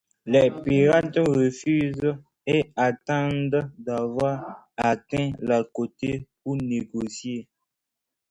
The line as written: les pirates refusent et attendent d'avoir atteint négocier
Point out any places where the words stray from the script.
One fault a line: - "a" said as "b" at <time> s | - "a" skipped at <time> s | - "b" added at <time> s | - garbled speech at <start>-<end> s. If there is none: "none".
- "la côte pour" added at 5.4 s